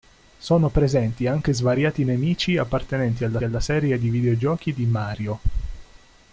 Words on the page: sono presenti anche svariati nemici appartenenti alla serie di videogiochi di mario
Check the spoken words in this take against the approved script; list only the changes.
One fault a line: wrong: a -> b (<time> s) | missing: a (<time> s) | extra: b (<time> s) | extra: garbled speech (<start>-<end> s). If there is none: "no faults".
extra: alla (3.4 s)